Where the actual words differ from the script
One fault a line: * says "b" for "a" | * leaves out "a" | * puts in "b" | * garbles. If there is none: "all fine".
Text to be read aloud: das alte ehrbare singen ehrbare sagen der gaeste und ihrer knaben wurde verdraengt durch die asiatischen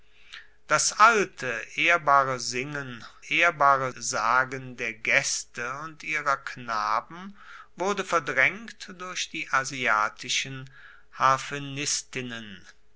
all fine